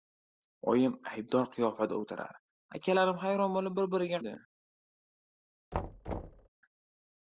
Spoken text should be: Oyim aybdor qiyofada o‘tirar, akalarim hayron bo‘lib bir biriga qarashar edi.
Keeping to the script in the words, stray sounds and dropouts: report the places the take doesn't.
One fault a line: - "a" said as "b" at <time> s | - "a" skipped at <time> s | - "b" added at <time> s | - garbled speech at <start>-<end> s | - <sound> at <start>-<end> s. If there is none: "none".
- "qarashar" skipped at 4.2 s
- thud at 5.7-6.5 s